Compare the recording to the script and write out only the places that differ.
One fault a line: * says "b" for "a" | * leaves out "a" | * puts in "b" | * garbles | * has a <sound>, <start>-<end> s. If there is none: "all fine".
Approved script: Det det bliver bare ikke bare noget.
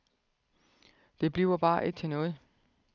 * leaves out "det"
* says "til" for "bare"